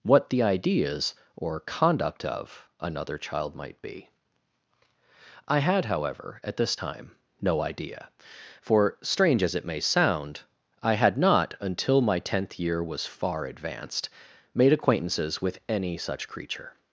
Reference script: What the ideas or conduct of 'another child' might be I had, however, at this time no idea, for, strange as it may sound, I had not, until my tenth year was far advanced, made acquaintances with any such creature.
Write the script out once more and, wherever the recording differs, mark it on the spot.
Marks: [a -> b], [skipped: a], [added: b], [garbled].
What the ideas or conduct of 'another child' might be I had, however, at this time no idea, for, strange as it may sound, I had not, until my tenth year was far advanced, made acquaintances with any such creature.